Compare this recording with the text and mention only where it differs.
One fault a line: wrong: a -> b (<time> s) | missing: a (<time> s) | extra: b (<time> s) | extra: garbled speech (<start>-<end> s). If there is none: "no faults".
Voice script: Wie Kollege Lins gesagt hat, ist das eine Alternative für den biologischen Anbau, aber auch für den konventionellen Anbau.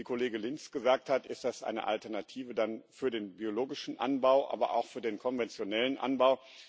no faults